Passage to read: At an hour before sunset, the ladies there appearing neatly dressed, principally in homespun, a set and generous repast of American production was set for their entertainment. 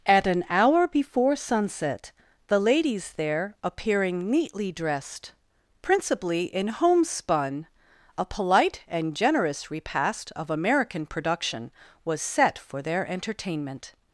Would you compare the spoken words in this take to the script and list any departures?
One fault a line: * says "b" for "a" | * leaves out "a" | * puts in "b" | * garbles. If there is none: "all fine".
* says "polite" for "set"